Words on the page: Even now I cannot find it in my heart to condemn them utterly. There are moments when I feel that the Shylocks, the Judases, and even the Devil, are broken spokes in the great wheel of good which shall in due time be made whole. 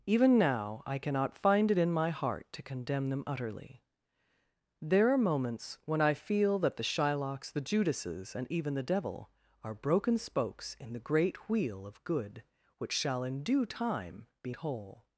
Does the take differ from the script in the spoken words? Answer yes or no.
yes